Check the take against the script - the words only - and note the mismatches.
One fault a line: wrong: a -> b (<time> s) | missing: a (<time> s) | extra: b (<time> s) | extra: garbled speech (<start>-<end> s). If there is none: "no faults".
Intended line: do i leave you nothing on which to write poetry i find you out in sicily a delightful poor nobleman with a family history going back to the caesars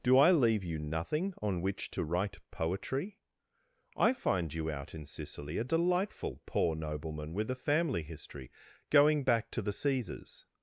no faults